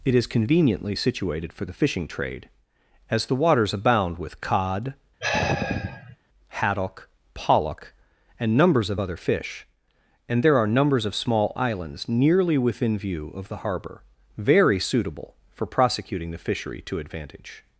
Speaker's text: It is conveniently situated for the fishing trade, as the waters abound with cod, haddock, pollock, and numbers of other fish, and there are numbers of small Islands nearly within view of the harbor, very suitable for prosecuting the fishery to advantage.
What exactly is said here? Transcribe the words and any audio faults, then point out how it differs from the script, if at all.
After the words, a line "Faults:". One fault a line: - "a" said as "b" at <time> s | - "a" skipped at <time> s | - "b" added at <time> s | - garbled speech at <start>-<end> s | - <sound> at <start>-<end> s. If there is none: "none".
It is conveniently situated for the fishing trade, as the waters abound with cod, haddock, pollock, and numbers of other fish, and there are numbers of small Islands nearly within view of the harbor, very suitable for prosecuting the fishery to advantage.
Faults:
- sigh at 5.2-6.2 s